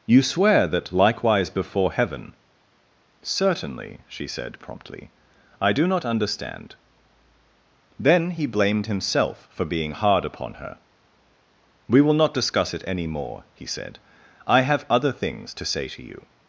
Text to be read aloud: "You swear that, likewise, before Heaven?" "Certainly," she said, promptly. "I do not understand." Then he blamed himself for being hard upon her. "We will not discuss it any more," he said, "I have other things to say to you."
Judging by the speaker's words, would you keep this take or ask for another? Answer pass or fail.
pass